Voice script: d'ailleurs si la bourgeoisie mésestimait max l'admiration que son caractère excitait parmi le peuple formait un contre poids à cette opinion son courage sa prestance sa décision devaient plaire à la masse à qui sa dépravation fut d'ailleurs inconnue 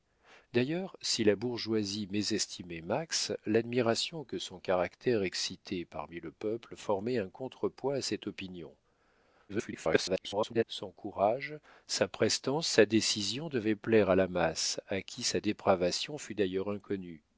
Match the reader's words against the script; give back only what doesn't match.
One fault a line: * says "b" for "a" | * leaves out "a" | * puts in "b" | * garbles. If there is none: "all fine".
* garbles